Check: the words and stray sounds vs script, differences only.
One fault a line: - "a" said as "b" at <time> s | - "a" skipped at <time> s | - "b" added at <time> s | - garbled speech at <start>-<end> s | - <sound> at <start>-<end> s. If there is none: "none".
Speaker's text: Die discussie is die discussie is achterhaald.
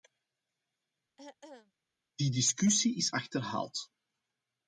- throat clearing at 1.2-1.7 s
- "die discussie is" skipped at 3.1 s